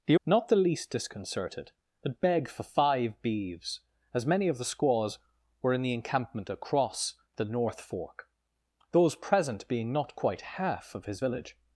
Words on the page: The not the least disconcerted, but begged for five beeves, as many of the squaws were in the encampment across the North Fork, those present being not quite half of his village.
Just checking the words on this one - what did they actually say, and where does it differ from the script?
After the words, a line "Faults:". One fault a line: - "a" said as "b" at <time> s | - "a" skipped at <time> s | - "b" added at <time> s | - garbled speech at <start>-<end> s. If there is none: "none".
The not the least disconcerted, but begged for five beeves, as many of the squaws were in the encampment across the North Fork, those present being not quite half of his village.
Faults:
none